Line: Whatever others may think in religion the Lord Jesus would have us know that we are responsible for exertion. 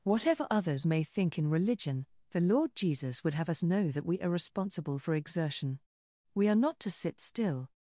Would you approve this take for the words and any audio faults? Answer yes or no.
no